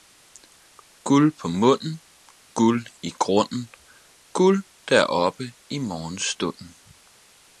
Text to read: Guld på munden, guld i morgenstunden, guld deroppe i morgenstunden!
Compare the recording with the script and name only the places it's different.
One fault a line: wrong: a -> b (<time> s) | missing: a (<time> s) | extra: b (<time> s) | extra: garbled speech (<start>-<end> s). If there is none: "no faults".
wrong: morgenstunden -> grunden (3.1 s)